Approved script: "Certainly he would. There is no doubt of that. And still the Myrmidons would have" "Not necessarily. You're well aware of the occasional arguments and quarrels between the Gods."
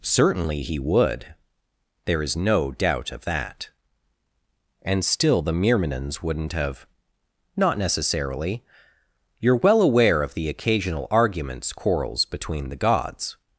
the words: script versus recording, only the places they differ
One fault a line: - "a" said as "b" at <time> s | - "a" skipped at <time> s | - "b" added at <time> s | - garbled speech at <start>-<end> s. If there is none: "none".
- "would" said as "wouldn't" at 6.2 s
- "and" skipped at 11.7 s